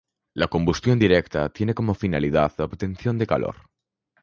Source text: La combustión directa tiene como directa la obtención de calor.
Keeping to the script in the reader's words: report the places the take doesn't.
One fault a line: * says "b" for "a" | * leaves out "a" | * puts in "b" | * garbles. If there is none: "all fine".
* says "finalidad" for "directa"